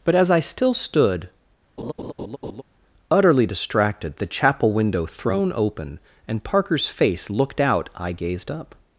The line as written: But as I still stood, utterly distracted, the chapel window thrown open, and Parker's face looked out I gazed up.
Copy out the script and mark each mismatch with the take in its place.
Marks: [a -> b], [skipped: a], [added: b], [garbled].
But as I still stood, utterly distracted, the chapel window thrown open, and Parker's face looked out I gazed up.